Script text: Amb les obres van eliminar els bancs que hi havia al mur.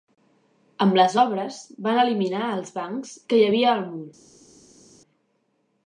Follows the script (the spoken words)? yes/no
yes